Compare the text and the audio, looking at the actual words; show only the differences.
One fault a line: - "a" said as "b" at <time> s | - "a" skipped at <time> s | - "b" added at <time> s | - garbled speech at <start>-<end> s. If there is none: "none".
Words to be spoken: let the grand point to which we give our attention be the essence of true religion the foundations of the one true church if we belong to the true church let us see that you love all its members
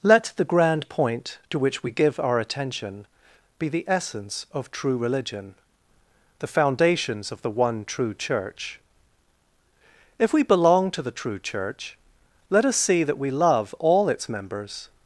- "you" said as "we" at 13.2 s